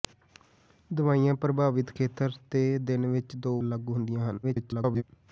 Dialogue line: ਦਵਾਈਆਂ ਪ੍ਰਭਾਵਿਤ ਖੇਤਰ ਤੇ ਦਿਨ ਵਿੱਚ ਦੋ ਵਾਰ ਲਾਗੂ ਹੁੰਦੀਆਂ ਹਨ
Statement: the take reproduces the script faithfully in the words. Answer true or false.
false